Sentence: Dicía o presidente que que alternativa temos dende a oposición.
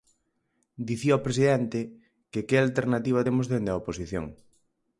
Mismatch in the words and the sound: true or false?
false